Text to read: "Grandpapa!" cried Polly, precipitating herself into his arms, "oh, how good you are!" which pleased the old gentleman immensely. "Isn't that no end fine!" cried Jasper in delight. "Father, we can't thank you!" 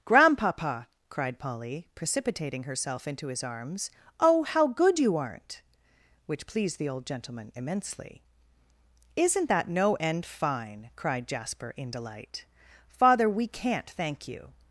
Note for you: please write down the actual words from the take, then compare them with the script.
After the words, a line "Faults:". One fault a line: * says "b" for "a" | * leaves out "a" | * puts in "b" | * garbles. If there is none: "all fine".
"Grandpapa!" cried Polly, precipitating herself into his arms, "oh, how good you aren't!" which pleased the old gentleman immensely. "Isn't that no end fine!" cried Jasper in delight. "Father, we can't thank you!"
Faults:
* says "aren't" for "are"